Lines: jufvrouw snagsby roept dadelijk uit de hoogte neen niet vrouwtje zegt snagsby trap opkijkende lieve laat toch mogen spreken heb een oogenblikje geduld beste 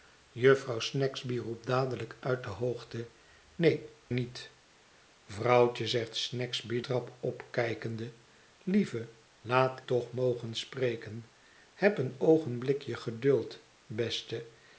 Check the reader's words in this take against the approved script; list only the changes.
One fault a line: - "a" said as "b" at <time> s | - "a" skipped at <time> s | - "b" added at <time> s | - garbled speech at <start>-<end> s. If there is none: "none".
none